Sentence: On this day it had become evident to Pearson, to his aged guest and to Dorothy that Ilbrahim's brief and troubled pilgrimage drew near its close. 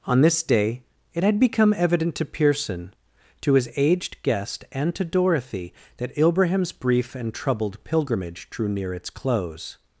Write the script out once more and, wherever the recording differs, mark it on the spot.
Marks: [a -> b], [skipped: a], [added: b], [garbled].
On this day it had become evident to Pearson, to his aged guest and to Dorothy that Ilbrahim's brief and troubled pilgrimage drew near its close.